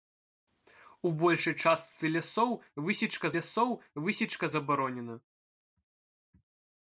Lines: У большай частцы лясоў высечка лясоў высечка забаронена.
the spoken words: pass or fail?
pass